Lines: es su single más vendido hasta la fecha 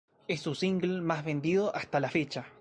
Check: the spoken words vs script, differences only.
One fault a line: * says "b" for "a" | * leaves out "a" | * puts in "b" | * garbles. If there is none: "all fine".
all fine